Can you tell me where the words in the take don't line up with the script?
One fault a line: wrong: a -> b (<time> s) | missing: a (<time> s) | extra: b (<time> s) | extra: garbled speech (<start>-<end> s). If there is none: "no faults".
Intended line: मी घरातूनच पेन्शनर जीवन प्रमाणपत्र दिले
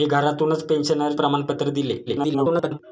missing: जीवन (1.1 s)
extra: garbled speech (2.1-2.8 s)